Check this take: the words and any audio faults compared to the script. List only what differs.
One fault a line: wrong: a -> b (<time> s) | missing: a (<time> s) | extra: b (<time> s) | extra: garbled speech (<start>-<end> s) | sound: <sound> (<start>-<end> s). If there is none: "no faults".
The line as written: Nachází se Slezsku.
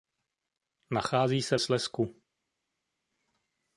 no faults